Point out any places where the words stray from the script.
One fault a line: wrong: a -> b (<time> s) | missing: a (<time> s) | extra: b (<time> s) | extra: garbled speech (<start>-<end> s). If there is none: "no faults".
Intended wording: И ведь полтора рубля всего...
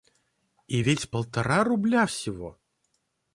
no faults